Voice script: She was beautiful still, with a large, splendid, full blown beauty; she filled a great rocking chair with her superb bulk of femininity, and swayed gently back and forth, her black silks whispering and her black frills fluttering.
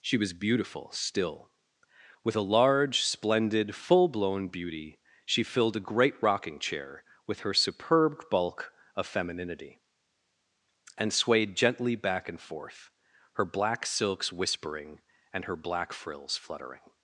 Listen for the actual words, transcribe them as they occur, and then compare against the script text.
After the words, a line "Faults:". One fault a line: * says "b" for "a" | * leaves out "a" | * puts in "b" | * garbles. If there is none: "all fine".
She was beautiful still, with a large, splendid, full blown beauty; she filled a great rocking chair with her superb bulk of femininity, and swayed gently back and forth, her black silks whispering and her black frills fluttering.
Faults:
all fine